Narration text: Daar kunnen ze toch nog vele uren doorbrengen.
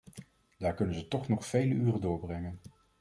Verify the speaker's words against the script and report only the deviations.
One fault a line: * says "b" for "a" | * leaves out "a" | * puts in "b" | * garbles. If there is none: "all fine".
all fine